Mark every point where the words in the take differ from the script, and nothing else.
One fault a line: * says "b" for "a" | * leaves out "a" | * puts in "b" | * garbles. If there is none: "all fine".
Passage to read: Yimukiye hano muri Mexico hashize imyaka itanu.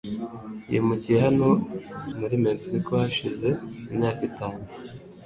all fine